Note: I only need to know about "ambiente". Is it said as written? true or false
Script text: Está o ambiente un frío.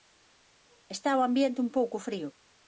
true